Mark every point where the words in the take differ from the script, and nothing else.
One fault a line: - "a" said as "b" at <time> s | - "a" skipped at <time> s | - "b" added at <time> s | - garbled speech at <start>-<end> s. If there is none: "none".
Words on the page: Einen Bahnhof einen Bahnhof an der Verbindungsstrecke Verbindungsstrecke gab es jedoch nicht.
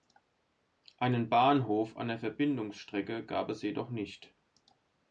- "einen Bahnhof" skipped at 1.9 s
- "Verbindungsstrecke" skipped at 3.2 s